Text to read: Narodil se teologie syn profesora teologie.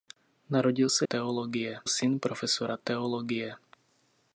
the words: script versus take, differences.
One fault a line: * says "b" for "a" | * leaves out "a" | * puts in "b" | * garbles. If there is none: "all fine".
all fine